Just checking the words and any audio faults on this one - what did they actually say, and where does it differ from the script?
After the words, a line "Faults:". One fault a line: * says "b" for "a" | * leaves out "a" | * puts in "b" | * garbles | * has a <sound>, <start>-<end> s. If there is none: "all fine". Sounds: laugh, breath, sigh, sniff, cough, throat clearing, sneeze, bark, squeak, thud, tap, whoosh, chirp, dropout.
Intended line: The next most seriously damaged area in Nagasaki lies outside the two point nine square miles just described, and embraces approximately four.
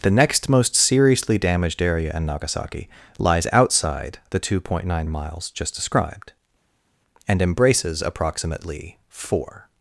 The next most seriously damaged area in Nagasaki lies outside the two point nine miles just described, and embraces approximately four.
Faults:
* leaves out "square"